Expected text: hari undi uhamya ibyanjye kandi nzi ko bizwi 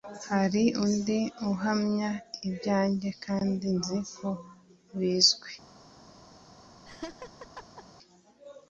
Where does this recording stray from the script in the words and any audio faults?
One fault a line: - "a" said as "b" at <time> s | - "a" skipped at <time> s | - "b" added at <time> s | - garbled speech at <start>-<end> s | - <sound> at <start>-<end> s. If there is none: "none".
- laugh at 6.9-7.8 s